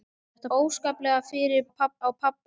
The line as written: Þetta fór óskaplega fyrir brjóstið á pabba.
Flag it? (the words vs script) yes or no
yes